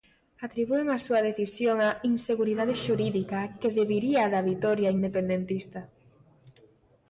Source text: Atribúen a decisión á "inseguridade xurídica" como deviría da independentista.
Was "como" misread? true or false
true